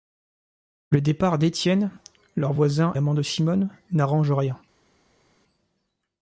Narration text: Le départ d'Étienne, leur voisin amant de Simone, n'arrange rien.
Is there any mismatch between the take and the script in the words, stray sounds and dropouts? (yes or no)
no